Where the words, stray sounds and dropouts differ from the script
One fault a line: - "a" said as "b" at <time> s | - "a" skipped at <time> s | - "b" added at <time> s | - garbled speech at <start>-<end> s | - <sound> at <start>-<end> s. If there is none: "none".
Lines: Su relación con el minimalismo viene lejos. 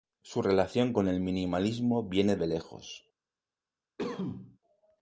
- "de" added at 2.4 s
- cough at 4.0-4.6 s